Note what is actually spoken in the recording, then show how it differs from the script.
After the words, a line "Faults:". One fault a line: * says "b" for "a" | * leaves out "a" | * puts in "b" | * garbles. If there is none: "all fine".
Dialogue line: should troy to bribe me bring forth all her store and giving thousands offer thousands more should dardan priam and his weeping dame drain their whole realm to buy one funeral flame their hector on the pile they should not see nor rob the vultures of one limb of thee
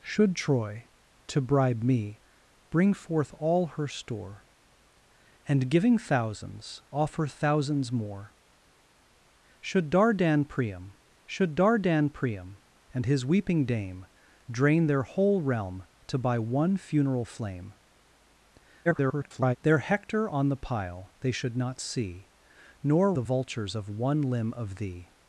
should troy to bribe me bring forth all her store and giving thousands offer thousands more should dardan priam should dardan priam and his weeping dame drain their whole realm to buy one funeral flame [garbled] their hector on the pile they should not see nor the vultures of one limb of thee
Faults:
* puts in "should dardan priam"
* garbles
* leaves out "rob"